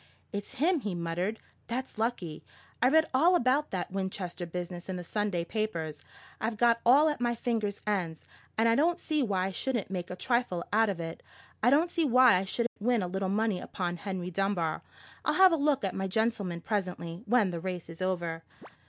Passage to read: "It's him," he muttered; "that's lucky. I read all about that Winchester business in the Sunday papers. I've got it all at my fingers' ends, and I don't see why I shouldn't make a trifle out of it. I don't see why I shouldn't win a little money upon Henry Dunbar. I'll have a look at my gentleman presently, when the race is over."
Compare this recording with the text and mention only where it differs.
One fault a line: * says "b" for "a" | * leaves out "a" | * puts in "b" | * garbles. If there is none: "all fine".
all fine